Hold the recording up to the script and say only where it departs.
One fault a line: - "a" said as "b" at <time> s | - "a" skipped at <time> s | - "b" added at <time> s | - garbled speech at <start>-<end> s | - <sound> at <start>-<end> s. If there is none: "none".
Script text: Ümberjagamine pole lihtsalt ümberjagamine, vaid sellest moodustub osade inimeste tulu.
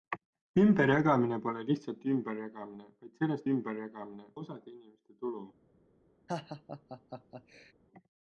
- "moodustub" said as "ümberjagamine" at 3.5 s
- laugh at 6.3-7.7 s